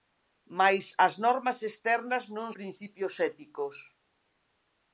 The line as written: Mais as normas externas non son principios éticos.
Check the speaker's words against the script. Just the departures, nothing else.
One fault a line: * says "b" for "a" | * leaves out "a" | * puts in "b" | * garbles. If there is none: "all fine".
* leaves out "son"